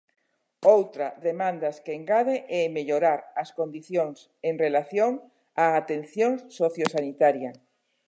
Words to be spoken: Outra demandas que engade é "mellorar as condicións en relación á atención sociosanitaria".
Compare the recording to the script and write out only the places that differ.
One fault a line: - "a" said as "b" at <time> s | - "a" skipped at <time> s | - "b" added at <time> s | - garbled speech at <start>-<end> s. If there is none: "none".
none